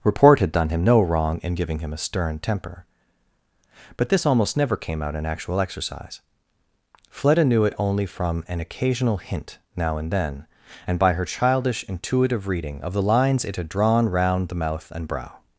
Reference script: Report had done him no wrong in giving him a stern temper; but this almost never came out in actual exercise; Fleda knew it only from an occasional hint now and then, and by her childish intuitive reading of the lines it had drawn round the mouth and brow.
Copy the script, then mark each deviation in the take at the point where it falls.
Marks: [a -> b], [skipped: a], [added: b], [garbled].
Report had done him no wrong in giving him a stern temper; but this almost never came out in actual exercise; Fleda knew it only from an occasional hint now and then, and by her childish intuitive reading of the lines it had drawn round the mouth and brow.